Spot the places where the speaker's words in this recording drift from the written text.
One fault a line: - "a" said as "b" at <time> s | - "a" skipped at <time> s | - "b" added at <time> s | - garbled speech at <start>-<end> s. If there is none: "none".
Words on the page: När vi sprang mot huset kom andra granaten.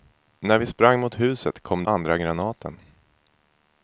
none